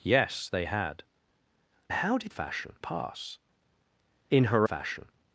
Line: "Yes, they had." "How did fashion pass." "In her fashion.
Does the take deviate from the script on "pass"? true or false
false